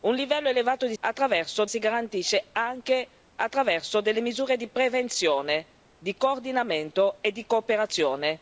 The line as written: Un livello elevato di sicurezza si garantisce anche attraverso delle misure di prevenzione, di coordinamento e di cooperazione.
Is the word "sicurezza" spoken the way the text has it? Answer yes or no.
no